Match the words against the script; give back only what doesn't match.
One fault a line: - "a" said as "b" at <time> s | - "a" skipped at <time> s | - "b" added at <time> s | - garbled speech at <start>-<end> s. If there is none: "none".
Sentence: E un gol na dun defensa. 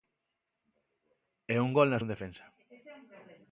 none